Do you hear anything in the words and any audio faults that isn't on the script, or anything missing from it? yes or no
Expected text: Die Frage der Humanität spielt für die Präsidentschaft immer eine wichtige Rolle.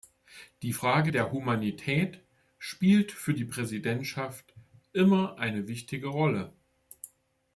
no